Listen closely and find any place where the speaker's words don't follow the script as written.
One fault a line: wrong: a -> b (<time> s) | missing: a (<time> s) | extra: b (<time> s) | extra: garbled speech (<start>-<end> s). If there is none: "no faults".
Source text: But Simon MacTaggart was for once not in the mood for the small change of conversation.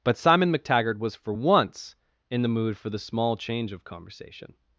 missing: not (2.0 s)